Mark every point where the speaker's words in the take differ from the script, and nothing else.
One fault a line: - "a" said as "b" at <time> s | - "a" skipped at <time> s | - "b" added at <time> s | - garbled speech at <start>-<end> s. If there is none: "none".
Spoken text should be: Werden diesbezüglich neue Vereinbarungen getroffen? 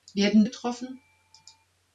- "diesbezüglich neue Vereinbarungen" skipped at 0.5 s